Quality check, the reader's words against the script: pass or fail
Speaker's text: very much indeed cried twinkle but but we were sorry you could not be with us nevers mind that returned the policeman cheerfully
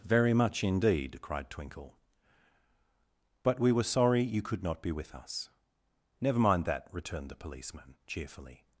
fail